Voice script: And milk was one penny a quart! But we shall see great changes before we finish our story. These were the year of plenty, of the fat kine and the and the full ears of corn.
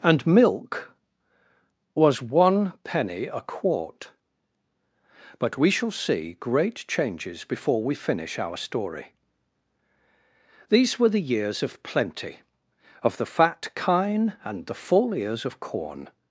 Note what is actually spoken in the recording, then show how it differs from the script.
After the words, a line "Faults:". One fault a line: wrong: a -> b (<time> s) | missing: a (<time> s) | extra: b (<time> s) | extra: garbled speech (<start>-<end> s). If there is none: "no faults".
And milk was one penny a quart! But we shall see great changes before we finish our story. These were the years of plenty, of the fat kine and the full ears of corn.
Faults:
wrong: year -> years (11.2 s)
missing: and the (14.8 s)